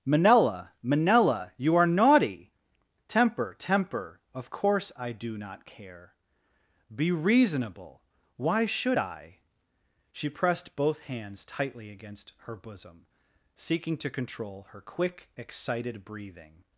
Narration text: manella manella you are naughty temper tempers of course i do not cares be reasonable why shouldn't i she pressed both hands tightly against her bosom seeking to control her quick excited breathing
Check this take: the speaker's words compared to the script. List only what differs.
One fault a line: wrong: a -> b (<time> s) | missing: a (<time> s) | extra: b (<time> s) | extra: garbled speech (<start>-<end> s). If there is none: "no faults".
wrong: tempers -> temper (3.6 s)
wrong: cares -> care (5.7 s)
wrong: shouldn't -> should (8.7 s)